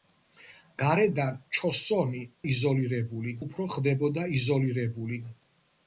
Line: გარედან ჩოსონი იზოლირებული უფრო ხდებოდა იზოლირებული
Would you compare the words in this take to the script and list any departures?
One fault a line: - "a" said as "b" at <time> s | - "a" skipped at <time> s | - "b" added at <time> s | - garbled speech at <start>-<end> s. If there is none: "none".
none